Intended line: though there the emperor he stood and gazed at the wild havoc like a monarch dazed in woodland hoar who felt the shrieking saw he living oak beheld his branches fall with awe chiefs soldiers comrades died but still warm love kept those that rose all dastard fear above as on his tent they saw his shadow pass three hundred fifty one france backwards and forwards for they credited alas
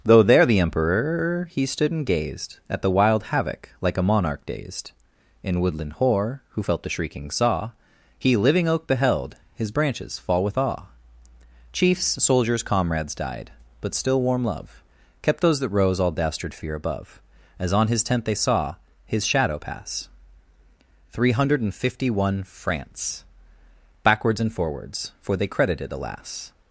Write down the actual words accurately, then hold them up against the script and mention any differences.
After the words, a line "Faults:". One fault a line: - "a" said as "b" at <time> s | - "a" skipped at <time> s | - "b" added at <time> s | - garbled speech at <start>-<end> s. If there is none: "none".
though there the emperor he stood and gazed at the wild havoc like a monarch dazed in woodland hoar who felt the shrieking saw he living oak beheld his branches fall with awe chiefs soldiers comrades died but still warm love kept those that rose all dastard fear above as on his tent they saw his shadow pass three hundred fifty one france backwards and forwards for they credited alas
Faults:
none